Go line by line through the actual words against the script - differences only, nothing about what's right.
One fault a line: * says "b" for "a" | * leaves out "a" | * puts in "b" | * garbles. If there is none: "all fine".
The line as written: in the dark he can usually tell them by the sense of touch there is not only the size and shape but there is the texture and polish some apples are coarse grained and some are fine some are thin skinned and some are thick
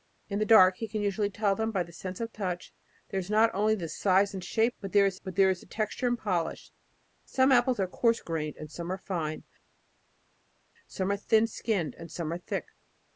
* puts in "but there is"